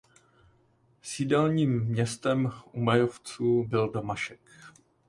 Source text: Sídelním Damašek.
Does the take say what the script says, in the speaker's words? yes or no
no